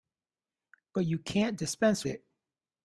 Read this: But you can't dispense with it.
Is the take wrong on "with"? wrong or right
wrong